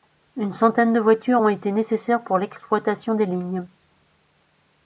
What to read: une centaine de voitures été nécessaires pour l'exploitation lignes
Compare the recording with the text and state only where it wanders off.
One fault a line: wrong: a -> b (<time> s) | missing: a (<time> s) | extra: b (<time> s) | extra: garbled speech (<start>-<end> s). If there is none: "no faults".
extra: ont (1.4 s)
extra: des (3.2 s)